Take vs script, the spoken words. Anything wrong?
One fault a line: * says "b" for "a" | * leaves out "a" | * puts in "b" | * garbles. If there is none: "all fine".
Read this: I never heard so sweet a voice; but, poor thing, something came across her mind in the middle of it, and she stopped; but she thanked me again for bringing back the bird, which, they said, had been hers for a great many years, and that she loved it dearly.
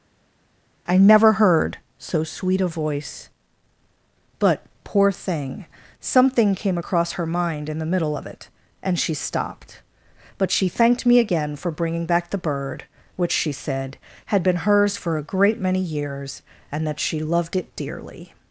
* says "she" for "they"